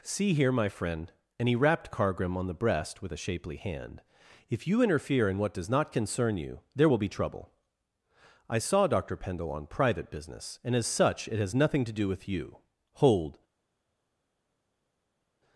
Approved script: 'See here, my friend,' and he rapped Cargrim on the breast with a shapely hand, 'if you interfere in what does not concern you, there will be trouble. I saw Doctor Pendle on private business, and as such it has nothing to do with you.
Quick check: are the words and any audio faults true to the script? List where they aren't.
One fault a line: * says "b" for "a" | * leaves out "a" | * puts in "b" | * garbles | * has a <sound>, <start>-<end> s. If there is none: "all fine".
* puts in "Hold"